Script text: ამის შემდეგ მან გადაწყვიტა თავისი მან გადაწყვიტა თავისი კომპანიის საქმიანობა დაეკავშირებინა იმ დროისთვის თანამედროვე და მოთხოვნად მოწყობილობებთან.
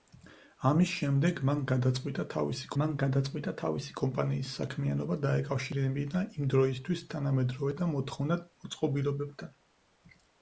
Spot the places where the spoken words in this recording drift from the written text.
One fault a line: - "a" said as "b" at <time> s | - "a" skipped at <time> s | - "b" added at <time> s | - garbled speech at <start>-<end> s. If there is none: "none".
none